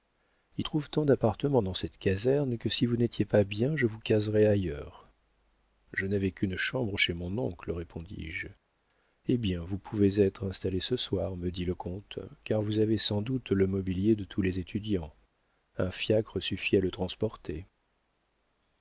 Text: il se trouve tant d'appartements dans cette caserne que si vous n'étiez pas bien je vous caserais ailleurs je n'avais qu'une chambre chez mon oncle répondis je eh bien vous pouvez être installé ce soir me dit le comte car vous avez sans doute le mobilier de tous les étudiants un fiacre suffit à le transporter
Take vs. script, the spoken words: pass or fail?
fail